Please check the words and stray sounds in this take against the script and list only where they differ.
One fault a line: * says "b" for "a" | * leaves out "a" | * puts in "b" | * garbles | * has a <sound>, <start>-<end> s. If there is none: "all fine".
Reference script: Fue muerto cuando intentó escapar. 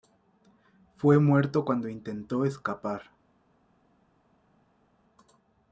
all fine